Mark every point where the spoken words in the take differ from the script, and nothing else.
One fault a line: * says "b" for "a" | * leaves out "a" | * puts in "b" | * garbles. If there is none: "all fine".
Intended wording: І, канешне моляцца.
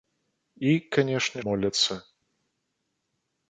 all fine